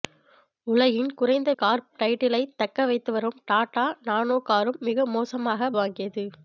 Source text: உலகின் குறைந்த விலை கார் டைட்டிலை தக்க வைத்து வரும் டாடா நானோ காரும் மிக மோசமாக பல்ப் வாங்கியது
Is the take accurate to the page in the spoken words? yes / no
no